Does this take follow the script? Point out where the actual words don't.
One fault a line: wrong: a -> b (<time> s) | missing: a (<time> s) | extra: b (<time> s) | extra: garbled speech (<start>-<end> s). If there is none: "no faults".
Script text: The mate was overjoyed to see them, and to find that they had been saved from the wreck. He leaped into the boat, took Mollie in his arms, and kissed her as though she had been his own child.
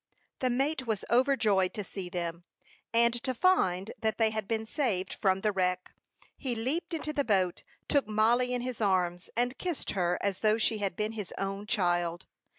no faults